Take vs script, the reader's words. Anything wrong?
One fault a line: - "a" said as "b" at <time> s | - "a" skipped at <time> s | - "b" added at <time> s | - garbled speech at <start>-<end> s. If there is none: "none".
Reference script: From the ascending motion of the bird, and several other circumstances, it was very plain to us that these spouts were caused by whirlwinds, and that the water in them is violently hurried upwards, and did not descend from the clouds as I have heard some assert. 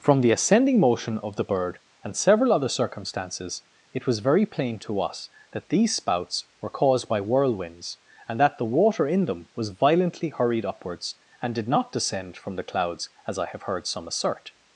- "is" said as "was" at 9.6 s